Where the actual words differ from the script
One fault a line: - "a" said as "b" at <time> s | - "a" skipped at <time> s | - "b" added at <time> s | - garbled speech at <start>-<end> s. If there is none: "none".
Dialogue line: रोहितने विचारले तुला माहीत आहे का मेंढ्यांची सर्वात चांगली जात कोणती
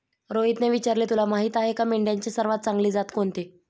none